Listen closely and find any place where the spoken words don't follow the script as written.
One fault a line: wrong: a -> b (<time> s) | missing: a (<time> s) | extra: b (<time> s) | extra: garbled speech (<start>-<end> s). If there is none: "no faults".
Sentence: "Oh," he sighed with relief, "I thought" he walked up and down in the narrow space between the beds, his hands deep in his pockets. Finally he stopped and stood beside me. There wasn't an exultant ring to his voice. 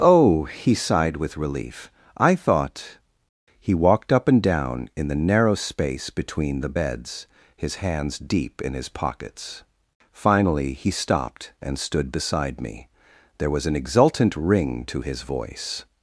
wrong: wasn't -> was (13.5 s)